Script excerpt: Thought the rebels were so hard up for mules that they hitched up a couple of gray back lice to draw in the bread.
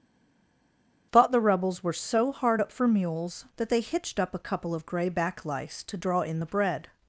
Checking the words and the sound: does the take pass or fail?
pass